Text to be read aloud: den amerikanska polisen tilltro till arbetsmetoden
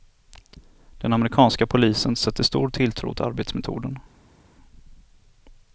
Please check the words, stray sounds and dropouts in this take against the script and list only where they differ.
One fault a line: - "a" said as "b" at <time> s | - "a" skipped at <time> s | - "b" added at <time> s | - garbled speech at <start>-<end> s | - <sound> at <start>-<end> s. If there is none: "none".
- "sätter stor" added at 2.1 s